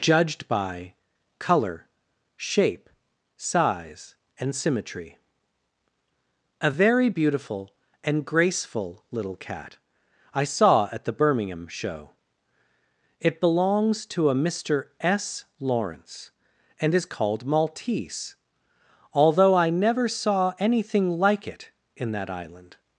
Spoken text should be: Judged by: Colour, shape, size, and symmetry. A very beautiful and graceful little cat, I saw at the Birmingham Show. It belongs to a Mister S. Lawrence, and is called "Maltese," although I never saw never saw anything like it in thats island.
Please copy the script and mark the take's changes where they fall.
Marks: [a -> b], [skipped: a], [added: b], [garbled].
Judged by: Colour, shape, size, and symmetry. A very beautiful and graceful little cat, I saw at the Birmingham Show. It belongs to a Mister S. Lawrence, and is called "Maltese," although I never saw [skipped: never saw] anything like it in [thats -> that] island.